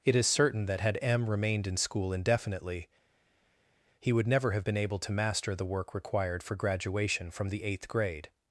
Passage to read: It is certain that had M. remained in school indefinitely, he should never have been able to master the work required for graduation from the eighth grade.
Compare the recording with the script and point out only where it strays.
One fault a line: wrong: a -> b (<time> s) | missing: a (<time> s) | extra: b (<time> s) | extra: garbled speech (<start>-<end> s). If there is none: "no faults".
wrong: should -> would (4.1 s)